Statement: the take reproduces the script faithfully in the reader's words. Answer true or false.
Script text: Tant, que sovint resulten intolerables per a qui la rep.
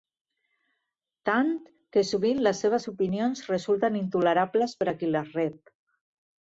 false